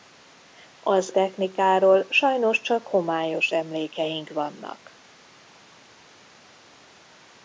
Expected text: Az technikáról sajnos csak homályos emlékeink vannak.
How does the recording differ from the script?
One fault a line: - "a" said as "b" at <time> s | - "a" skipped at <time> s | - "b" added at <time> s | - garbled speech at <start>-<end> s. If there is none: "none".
none